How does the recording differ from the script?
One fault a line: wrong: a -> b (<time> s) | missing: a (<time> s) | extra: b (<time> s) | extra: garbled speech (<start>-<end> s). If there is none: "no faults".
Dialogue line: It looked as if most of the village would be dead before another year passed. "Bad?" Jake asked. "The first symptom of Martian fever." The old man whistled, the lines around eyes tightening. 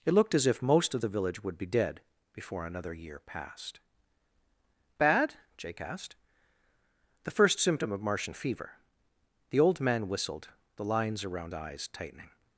no faults